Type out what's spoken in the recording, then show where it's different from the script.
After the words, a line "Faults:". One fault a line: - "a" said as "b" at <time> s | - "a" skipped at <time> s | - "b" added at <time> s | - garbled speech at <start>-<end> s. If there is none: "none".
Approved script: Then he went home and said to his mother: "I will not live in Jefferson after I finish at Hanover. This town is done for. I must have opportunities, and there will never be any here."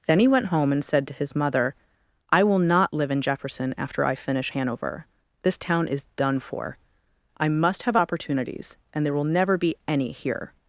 Then he went home and said to his mother: "I will not live in Jefferson after I finish Hanover. This town is done for. I must have opportunities, and there will never be any here."
Faults:
- "at" skipped at 4.5 s